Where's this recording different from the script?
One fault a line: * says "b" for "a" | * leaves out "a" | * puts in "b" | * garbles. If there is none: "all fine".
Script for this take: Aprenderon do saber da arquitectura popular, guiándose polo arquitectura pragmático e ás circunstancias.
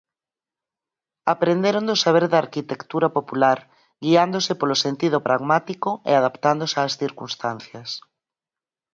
* says "sentido" for "arquitectura"
* puts in "adaptándose"